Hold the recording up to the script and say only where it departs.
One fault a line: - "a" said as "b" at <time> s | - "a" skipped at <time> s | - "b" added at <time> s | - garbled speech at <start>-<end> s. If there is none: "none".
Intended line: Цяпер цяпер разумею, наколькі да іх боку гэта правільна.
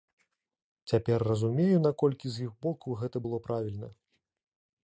- "цяпер" skipped at 1.2 s
- "да" said as "з" at 2.4 s
- "было" added at 3.3 s